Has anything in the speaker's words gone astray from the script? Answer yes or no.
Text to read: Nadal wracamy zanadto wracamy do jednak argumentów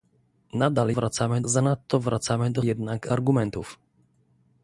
no